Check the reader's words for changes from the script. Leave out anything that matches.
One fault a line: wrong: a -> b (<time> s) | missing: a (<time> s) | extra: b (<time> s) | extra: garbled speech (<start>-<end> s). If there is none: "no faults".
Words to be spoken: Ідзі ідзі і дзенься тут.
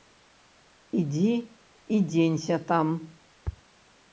missing: ідзі (1.3 s)
wrong: тут -> там (2.7 s)